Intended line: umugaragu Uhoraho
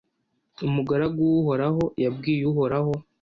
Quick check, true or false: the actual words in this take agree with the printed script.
false